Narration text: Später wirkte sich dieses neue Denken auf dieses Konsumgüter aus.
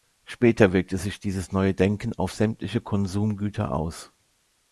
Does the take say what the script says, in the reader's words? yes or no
no